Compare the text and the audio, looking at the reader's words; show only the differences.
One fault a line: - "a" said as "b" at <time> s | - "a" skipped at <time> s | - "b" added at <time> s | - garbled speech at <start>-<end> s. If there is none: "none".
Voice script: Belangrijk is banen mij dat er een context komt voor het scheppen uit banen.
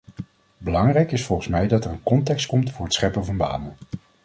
- "banen" said as "volgens" at 1.2 s
- "uit" said as "van" at 3.2 s